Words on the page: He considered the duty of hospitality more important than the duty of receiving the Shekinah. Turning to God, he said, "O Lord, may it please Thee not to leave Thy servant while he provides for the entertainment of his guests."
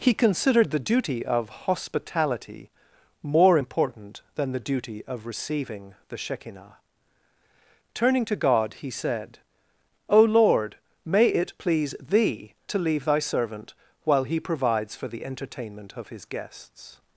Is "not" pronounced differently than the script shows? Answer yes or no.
yes